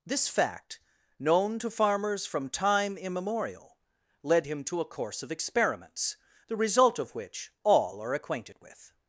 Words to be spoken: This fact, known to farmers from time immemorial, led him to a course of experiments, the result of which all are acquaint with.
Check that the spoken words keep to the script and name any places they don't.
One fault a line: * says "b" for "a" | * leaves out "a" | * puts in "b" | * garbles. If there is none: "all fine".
* says "acquainted" for "acquaint"